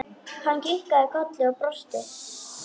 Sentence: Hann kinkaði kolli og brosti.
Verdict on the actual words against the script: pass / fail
pass